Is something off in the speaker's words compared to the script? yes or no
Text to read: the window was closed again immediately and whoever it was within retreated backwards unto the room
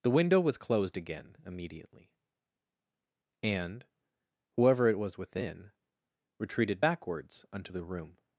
no